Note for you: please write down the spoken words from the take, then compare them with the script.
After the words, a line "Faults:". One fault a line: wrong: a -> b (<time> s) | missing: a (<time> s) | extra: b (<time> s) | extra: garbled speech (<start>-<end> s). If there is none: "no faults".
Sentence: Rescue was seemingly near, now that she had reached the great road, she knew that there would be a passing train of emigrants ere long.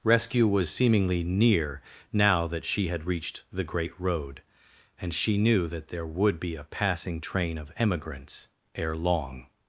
Rescue was seemingly near, now that she had reached the great road, and she knew that there would be a passing train of emigrants ere long.
Faults:
extra: and (5.0 s)